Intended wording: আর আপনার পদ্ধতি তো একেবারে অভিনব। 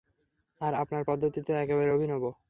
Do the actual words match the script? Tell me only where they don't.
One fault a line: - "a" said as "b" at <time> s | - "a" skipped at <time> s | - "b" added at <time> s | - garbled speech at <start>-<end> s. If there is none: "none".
none